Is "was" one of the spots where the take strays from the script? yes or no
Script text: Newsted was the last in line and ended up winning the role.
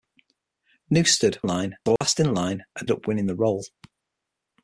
yes